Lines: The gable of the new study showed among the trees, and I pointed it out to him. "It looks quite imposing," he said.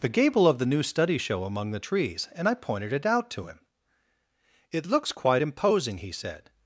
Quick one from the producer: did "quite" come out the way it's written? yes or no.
yes